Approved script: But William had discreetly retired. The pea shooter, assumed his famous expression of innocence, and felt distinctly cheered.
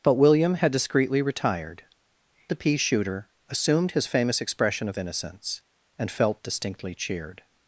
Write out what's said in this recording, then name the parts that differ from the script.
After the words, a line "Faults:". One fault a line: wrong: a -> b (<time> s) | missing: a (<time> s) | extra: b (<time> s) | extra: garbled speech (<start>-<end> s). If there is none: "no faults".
But William had discreetly retired. The pea shooter, assumed his famous expression of innocence, and felt distinctly cheered.
Faults:
no faults